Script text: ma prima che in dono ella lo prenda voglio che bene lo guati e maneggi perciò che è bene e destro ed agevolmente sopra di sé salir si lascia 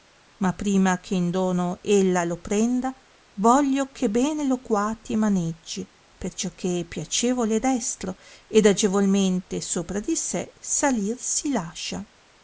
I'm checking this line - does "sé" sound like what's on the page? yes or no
yes